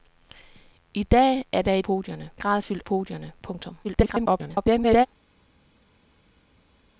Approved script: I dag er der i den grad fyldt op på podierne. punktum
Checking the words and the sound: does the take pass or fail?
fail